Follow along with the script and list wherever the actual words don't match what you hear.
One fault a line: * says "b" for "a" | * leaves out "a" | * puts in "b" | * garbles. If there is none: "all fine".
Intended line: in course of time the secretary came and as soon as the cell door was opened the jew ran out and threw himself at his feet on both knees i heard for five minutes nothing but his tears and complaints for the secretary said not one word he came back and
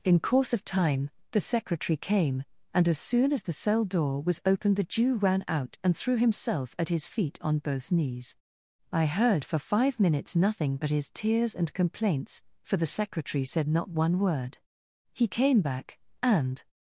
all fine